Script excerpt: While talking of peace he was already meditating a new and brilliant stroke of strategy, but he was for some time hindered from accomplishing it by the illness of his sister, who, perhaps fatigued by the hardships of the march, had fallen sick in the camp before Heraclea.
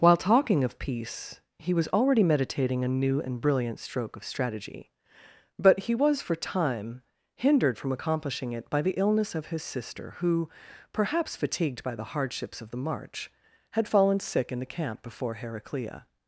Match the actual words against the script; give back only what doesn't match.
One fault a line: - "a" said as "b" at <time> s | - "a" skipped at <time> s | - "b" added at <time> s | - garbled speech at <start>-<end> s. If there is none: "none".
- "some" skipped at 6.3 s